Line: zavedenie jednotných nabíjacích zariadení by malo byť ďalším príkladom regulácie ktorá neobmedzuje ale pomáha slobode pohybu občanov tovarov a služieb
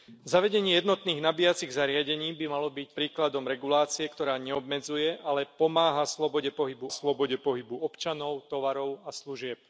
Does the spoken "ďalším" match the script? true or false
false